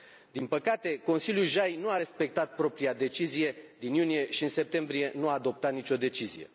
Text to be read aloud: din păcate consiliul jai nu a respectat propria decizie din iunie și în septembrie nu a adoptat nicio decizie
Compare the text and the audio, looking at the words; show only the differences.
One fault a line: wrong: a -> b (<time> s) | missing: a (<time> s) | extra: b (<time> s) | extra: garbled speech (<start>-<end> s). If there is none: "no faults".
no faults